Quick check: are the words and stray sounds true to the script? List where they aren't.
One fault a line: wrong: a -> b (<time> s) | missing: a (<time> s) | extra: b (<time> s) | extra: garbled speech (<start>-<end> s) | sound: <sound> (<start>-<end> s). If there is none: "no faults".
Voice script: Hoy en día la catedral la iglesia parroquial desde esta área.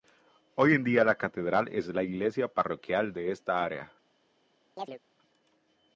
extra: es (1.7 s)
wrong: desde -> de (3.1 s)
sound: chirp (4.8-5.0 s)